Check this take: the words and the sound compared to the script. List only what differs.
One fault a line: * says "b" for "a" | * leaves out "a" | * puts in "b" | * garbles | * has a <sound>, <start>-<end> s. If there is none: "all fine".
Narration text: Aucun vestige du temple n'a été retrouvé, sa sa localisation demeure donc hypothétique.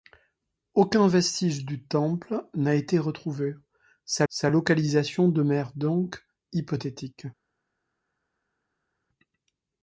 all fine